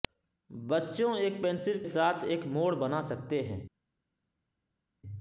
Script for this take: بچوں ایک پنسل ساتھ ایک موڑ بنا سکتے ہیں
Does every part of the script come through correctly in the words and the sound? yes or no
yes